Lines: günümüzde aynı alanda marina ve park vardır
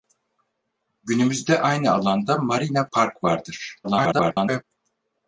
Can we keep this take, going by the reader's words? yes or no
no